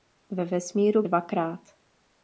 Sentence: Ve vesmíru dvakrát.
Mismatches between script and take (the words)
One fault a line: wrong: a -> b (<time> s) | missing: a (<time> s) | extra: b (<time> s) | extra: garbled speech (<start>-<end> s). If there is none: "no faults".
no faults